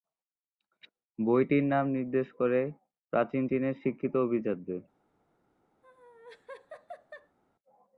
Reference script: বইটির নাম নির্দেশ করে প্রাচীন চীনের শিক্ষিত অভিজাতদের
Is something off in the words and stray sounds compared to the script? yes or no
yes